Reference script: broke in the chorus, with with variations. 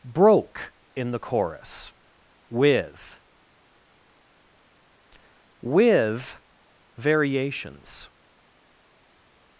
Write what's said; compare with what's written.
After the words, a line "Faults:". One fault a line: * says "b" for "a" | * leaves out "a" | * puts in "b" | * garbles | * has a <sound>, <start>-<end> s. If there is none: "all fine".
broke in the chorus, with with variations.
Faults:
all fine